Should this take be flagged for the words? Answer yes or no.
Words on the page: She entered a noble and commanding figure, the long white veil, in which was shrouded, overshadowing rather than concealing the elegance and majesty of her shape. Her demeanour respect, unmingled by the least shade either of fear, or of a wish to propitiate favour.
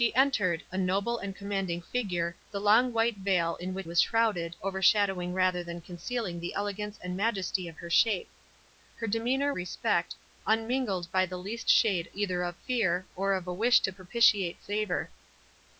no